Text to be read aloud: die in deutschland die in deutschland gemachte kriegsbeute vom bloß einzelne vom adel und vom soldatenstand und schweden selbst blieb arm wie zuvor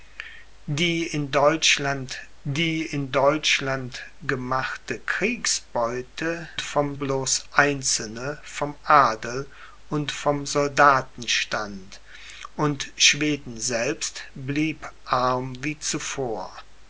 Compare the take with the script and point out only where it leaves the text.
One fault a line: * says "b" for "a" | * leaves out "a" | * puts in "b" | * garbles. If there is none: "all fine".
all fine